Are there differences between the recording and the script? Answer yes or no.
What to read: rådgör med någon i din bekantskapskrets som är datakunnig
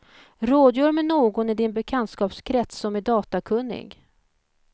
no